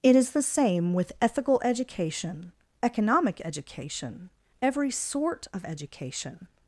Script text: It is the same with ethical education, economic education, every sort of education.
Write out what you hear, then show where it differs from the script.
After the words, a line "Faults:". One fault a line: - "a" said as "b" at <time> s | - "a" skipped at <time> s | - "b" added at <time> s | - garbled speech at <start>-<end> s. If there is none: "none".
It is the same with ethical education, economic education, every sort of education.
Faults:
none